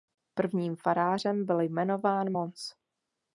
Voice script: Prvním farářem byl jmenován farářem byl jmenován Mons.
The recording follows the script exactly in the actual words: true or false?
false